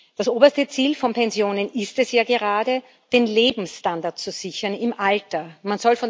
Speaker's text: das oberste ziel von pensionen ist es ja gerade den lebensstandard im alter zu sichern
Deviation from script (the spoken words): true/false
false